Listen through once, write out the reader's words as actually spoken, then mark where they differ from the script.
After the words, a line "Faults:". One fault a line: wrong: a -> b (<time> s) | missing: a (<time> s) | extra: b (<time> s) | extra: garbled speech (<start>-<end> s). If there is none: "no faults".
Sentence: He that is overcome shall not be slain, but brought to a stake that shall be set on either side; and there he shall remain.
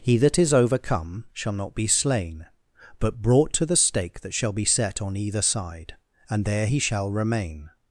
He that is overcome shall not be slain, but brought to the stake that shall be set on either side; and there he shall remain.
Faults:
wrong: a -> the (3.6 s)